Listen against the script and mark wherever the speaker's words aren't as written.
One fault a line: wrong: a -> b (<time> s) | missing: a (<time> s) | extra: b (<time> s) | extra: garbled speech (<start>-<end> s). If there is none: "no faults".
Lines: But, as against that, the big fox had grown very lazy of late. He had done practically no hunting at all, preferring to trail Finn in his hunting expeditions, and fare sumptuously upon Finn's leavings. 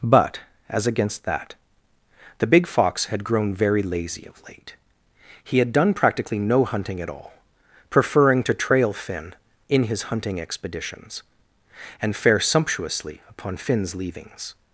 no faults